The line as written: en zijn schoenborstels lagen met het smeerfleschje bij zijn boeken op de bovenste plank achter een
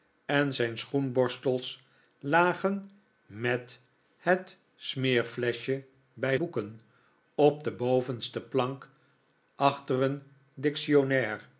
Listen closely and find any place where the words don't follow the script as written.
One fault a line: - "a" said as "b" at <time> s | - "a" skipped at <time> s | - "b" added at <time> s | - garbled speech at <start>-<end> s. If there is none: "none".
- "zijn" skipped at 6.4 s